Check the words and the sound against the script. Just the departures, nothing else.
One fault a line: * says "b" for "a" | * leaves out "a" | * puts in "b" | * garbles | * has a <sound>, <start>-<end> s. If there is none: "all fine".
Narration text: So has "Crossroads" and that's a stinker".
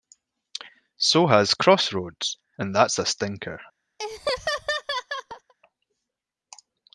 * has a laugh, 4.0-5.5 s